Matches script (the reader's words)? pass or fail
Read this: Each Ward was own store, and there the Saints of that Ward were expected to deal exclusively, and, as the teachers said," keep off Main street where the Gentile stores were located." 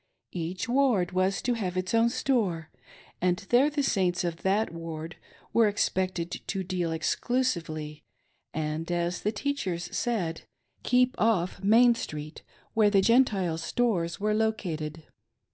fail